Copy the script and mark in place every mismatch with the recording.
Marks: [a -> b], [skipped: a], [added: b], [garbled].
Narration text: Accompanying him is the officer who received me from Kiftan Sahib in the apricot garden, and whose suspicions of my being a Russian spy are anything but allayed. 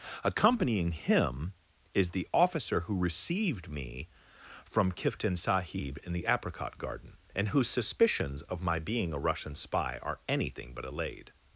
Accompanying him is the officer who received me from Kiftan Sahib in the apricot garden, and whose suspicions of my being a Russian spy are anything but allayed.